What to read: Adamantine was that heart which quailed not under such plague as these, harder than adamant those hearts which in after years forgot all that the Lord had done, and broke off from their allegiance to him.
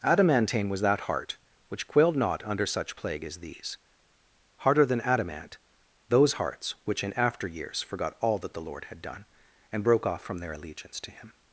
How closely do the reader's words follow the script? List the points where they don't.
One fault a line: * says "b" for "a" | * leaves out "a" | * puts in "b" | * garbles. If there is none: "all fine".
all fine